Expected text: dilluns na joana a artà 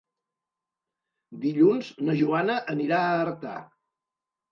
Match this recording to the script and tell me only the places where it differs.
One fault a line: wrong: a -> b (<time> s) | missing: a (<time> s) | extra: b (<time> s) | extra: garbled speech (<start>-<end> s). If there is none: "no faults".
extra: anirà (2.8 s)